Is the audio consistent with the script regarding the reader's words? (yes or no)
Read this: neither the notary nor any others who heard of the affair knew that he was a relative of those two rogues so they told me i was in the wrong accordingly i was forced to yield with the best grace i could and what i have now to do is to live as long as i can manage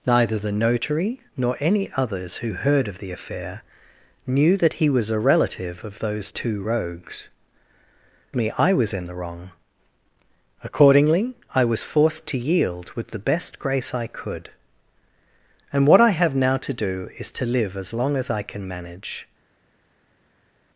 no